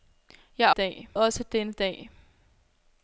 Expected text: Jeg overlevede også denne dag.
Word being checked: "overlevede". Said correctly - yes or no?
no